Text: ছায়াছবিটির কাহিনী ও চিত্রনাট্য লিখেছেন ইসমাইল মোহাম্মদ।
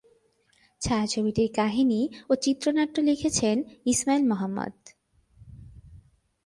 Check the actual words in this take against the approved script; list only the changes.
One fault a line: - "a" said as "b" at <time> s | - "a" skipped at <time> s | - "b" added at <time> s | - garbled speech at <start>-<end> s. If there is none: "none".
none